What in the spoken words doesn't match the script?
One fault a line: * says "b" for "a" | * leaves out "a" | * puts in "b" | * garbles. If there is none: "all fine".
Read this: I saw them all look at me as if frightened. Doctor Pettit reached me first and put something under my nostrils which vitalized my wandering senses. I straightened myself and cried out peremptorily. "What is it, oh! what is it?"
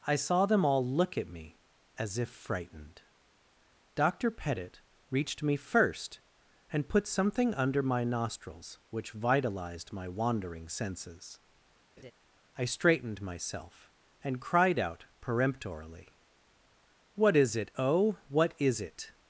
all fine